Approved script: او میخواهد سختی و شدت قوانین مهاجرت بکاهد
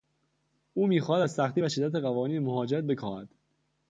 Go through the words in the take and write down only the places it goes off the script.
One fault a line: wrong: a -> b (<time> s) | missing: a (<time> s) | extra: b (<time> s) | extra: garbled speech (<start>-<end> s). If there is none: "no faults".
extra: از (1.2 s)